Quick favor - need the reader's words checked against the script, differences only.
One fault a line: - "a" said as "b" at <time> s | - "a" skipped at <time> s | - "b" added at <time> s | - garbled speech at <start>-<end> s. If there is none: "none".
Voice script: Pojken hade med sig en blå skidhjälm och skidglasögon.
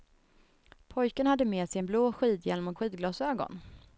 none